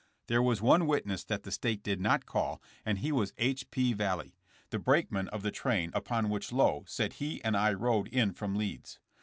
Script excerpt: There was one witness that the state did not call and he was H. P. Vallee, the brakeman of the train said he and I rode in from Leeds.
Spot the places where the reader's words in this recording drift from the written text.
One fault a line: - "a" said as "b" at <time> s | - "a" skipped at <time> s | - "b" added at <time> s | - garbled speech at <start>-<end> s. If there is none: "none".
- "upon which Lowe" added at 5.9 s